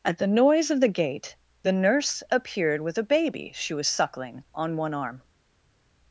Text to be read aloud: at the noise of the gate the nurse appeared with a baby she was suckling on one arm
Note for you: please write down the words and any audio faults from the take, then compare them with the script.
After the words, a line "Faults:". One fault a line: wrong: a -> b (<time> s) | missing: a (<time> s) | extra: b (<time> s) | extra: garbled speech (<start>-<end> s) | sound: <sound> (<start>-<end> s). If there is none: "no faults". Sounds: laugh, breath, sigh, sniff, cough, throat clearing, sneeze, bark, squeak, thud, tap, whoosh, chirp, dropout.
at the noise of the gate the nurse appeared with a baby she was suckling on one arm
Faults:
no faults